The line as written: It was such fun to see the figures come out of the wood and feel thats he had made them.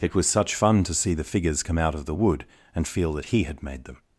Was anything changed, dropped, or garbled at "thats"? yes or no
yes